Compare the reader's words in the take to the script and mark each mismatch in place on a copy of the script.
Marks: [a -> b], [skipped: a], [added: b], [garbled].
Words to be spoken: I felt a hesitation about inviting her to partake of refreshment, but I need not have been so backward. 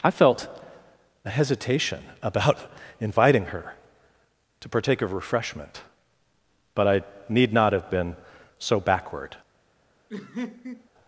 I felt a hesitation about inviting her to partake of refreshment, but I need not have been so backward.